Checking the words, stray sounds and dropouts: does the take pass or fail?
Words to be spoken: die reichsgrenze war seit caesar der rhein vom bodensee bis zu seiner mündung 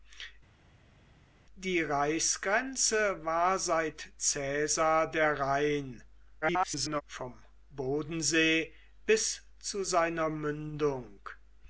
fail